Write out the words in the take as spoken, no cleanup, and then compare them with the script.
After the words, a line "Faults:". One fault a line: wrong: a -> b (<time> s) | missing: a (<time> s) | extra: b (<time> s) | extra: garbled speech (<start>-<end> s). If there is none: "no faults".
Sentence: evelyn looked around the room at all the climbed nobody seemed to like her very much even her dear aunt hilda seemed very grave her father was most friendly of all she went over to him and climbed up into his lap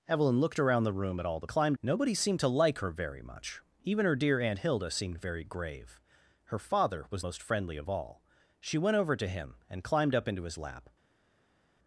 evelyn looked around the room at all the climbed nobody seemed to like her very much even her dear aunt hilda seemed very grave her father was most friendly of all she went over to him and climbed up into his lap
Faults:
no faults